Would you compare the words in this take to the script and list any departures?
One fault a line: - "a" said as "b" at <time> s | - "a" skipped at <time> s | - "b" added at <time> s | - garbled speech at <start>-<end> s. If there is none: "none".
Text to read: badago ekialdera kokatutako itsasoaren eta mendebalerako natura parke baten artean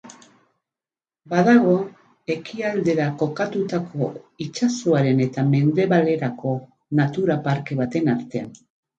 none